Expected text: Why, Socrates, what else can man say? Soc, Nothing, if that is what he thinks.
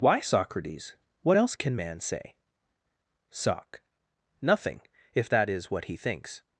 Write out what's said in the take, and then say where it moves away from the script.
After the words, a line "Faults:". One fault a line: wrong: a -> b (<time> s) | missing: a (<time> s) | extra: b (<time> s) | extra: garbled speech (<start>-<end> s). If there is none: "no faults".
Why, Socrates, what else can man say? Soc, Nothing, if that is what he thinks.
Faults:
no faults